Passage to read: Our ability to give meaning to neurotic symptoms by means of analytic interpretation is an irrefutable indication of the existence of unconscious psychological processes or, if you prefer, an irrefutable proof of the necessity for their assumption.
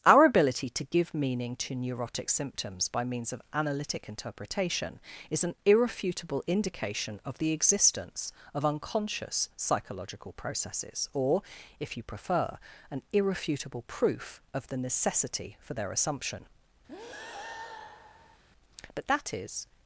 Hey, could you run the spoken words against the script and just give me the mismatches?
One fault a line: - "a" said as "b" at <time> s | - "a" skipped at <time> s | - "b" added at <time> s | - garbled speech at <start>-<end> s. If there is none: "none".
- "But that is" added at 18.9 s